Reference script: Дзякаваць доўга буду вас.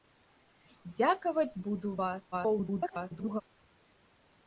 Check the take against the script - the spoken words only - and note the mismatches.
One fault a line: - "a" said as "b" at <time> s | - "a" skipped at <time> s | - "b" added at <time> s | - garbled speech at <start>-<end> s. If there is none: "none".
- "доўга" skipped at 1.6 s
- garbled speech at 2.3-3.4 s